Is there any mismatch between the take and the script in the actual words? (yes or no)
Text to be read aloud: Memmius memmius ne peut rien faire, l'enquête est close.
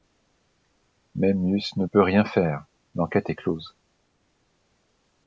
yes